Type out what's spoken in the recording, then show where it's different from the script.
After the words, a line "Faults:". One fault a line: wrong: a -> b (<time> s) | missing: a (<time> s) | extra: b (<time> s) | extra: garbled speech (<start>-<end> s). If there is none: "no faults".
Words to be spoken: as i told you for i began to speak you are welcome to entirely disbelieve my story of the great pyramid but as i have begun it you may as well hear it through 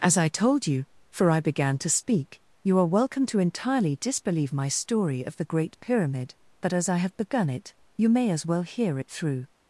as i told you for i began to speak you are welcome to entirely disbelieve my story of the great pyramid but as i have begun it you may as well hear it through
Faults:
no faults